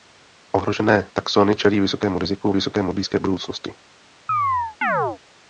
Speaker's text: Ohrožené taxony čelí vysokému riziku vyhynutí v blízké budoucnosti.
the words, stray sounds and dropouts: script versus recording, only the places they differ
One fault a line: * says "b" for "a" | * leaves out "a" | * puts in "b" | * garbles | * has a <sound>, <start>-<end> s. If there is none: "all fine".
* says "vysokému" for "vyhynutí"
* has a chirp, 4.3-5.2 s